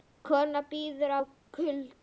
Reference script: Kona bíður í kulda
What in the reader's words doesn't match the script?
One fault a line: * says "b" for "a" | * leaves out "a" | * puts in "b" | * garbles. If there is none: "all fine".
all fine